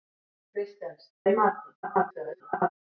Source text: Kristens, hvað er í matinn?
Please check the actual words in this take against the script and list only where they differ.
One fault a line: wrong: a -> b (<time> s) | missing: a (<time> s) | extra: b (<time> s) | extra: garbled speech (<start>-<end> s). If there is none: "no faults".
missing: hvað (1.1 s)
extra: garbled speech (1.8-2.7 s)